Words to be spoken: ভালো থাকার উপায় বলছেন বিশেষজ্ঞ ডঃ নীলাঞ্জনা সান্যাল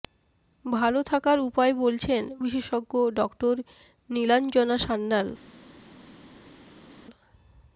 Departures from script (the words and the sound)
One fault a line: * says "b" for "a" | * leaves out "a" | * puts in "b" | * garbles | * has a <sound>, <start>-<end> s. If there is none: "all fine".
all fine